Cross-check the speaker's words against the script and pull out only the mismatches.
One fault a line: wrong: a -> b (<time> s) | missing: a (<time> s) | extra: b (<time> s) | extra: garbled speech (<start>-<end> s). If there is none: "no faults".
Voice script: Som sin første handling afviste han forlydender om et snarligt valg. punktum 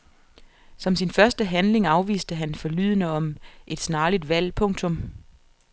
no faults